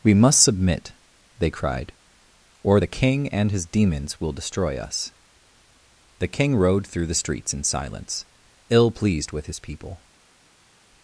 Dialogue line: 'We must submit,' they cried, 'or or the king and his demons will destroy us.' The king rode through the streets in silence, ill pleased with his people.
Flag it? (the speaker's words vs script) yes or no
yes